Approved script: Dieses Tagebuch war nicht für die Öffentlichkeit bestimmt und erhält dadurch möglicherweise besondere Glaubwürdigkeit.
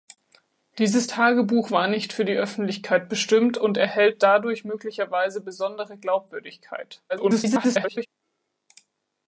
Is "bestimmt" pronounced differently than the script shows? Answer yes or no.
no